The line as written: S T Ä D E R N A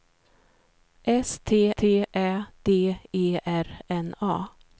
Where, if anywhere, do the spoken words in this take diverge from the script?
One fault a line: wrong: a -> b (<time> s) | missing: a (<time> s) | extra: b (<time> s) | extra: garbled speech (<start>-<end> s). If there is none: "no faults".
extra: T (1.8 s)